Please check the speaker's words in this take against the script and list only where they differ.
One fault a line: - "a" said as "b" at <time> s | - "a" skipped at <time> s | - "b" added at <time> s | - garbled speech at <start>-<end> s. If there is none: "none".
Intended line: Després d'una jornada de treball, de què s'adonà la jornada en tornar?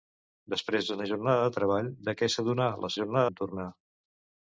none